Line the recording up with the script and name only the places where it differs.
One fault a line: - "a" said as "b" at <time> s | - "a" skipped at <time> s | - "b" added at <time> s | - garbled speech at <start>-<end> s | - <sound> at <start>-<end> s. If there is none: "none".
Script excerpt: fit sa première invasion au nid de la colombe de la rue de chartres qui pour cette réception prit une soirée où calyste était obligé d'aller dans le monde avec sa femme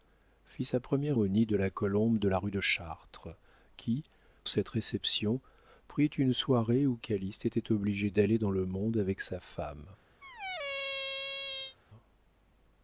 - "invasion" skipped at 1.2 s
- "pour" skipped at 4.0 s
- squeak at 10.2-11.8 s